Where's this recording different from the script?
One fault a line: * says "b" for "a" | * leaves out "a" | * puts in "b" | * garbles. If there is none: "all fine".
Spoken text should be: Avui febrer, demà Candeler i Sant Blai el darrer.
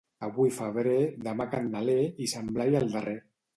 all fine